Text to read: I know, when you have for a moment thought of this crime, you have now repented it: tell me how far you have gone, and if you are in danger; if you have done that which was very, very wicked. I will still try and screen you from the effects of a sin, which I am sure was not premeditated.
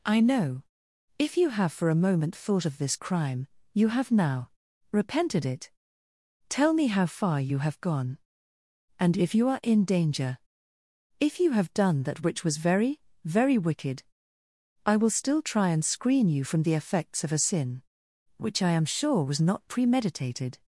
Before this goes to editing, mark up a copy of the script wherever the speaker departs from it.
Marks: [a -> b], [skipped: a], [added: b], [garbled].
I know, [when -> if] you have for a moment thought of this crime, you have now repented it: tell me how far you have gone, and if you are in danger; if you have done that which was very, very wicked. I will still try and screen you from the effects of a sin, which I am sure was not premeditated.